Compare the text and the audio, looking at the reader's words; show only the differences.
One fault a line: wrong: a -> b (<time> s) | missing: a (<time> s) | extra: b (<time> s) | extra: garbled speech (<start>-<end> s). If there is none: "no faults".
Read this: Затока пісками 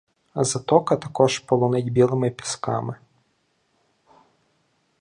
extra: також полонить білими (0.9 s)